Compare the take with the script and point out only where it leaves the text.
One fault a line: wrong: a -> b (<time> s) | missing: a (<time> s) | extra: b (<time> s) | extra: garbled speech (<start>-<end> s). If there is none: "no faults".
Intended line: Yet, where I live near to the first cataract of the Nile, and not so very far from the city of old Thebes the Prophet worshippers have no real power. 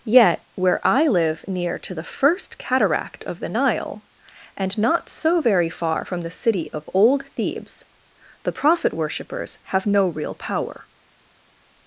no faults